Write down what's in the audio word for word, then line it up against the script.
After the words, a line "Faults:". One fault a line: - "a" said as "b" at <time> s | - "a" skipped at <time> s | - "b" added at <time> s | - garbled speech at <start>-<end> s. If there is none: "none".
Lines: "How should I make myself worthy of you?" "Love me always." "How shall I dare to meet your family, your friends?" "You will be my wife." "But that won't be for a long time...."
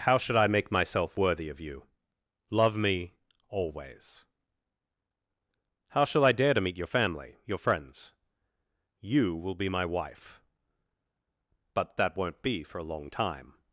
"How should I make myself worthy of you?" "Love me always." "How shall I dare to meet your family, your friends?" "You will be my wife." "But that won't be for a long time...."
Faults:
none